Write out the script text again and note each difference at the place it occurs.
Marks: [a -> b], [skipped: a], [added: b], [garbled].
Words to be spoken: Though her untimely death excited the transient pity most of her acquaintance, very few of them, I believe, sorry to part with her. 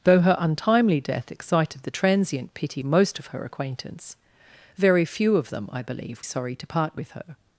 Though her untimely death excited the transient pity most of her acquaintance, very few of them, I believe, sorry to part with her.